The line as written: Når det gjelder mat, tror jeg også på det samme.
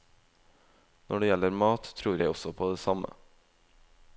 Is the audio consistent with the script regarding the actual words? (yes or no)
yes